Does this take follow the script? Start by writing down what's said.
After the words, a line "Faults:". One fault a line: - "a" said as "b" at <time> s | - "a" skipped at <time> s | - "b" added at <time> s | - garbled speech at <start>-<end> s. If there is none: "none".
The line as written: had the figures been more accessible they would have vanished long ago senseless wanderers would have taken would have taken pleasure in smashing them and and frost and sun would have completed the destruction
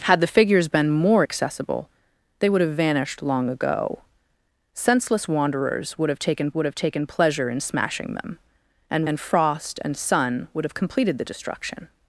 had the figures been more accessible they would have vanished long ago senseless wanderers would have taken would have taken pleasure in smashing them and and frost and sun would have completed the destruction
Faults:
none